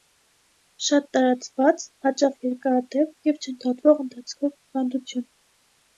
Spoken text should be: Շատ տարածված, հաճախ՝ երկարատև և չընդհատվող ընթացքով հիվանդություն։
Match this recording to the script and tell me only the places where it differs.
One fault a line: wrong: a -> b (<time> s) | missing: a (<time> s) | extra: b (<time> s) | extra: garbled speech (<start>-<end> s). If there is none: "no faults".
no faults